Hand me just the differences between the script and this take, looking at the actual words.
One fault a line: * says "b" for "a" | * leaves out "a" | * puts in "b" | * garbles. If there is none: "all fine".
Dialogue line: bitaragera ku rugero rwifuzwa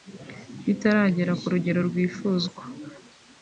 all fine